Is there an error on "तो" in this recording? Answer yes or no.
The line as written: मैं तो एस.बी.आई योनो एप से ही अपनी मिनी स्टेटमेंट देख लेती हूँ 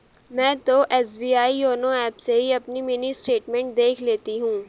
no